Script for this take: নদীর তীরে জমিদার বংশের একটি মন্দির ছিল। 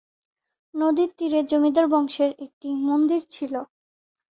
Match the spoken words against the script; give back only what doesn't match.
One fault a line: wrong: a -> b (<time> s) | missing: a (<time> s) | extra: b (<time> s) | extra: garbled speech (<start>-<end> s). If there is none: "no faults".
no faults